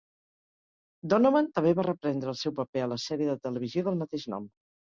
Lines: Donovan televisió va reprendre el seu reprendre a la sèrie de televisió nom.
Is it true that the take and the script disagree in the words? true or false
true